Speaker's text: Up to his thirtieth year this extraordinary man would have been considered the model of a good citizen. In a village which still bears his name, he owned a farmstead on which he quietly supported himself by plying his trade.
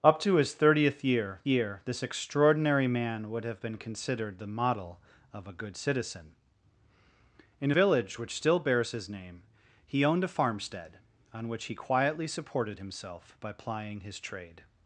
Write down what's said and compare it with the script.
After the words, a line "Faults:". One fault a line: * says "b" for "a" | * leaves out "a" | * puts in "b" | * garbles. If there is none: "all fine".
Up to his thirtieth year year this extraordinary man would have been considered the model of a good citizen. In village which still bears his name, he owned a farmstead on which he quietly supported himself by plying his trade.
Faults:
* puts in "year"
* leaves out "a"